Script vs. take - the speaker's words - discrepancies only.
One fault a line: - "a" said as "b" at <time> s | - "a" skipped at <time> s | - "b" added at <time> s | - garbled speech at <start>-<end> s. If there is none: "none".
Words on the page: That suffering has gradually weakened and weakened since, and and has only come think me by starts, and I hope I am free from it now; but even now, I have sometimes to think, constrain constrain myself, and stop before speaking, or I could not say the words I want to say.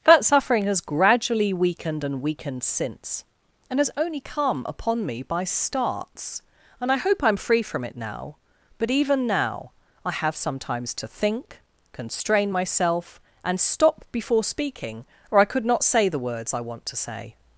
- "and" skipped at 3.8 s
- "think" said as "upon" at 4.7 s
- "constrain" skipped at 12.5 s